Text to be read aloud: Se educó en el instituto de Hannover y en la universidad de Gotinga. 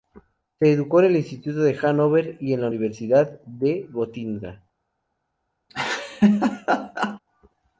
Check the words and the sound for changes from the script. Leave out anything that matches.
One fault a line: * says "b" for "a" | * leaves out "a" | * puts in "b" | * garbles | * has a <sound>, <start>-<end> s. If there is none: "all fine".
* has a laugh, 5.7-7.2 s